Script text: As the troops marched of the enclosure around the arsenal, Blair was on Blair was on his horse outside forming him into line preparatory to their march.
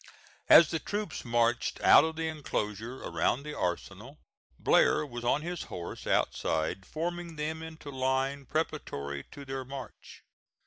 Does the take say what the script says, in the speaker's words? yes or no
no